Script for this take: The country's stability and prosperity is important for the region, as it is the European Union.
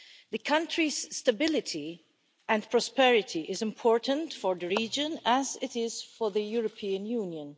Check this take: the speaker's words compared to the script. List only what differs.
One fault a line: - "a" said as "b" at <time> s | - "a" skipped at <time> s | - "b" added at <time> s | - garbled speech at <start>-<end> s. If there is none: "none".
- "for" added at 6.2 s